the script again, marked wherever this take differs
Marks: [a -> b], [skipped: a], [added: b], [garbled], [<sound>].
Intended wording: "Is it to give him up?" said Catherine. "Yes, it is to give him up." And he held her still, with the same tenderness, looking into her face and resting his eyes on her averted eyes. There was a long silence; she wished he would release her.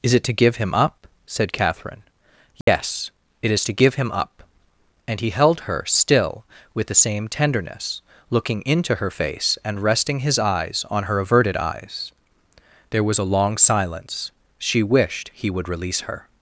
"Is it to give him up?" said Catherine. "Yes, [dropout] it is to give him up." And he held her still, with the same tenderness, looking into her face and resting his eyes on her averted eyes. There was a long silence; she wished he would release her.